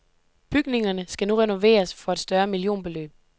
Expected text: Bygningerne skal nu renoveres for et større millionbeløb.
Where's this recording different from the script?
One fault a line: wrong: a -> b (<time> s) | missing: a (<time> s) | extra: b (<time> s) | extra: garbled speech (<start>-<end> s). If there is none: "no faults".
no faults